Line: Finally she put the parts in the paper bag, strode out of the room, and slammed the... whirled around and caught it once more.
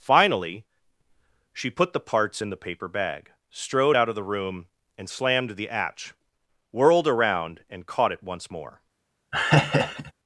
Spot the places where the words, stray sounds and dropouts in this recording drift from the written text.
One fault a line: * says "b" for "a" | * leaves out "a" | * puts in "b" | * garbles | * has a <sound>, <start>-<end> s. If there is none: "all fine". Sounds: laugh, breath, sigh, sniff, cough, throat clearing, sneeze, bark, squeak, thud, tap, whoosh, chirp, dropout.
* puts in "hatch"
* has a laugh, 9.3-10.1 s